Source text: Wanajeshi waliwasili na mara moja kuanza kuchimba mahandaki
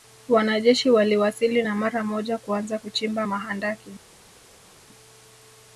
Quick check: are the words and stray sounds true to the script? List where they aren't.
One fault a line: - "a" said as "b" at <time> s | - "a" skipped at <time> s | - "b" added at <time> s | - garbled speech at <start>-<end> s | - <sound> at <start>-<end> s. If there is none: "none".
none